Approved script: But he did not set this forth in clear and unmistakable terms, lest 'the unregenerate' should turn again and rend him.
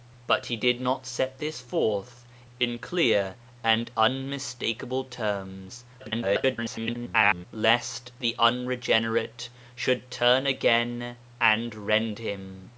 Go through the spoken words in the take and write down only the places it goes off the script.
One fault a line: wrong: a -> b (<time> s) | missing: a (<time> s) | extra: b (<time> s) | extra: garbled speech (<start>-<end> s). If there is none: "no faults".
extra: garbled speech (6.0-7.5 s)